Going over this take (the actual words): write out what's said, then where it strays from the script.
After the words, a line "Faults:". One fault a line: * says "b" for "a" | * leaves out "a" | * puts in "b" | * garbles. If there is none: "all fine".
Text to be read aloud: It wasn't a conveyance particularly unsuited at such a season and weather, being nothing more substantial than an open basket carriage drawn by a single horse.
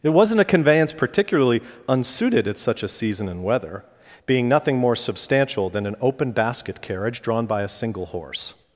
It wasn't a conveyance particularly unsuited at such a season and weather, being nothing more substantial than an open basket carriage drawn by a single horse.
Faults:
all fine